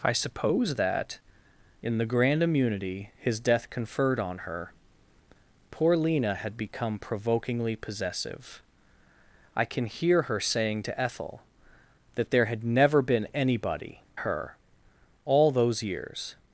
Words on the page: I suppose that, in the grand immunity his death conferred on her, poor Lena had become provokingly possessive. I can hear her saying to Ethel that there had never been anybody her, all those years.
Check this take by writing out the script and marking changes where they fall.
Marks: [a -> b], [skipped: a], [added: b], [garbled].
I suppose that, in the grand immunity his death conferred on her, poor Lena had become provokingly possessive. I can hear her saying to Ethel that there had never been anybody her, all those years.